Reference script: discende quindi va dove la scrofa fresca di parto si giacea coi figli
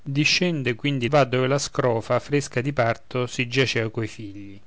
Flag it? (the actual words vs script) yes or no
no